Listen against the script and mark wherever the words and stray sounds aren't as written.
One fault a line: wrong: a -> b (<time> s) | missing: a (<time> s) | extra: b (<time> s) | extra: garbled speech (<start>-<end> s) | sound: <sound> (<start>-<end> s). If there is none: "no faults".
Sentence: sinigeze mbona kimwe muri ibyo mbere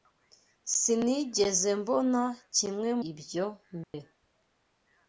missing: muri (2.9 s)
sound: dropout (3.8-3.9 s)